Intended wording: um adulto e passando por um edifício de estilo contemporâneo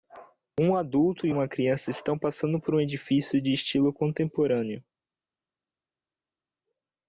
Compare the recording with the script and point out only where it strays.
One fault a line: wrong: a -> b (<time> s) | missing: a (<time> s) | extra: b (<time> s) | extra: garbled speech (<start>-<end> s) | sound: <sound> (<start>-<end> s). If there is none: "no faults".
extra: uma criança estão (1.3 s)